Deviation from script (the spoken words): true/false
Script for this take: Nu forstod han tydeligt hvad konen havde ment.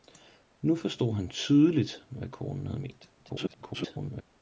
true